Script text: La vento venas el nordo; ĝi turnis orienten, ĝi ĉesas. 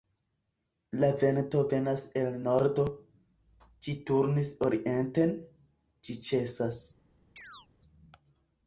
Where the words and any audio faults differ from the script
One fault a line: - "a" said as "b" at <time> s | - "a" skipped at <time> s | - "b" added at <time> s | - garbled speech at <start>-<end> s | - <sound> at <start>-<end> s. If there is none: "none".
- chirp at 7.4-7.7 s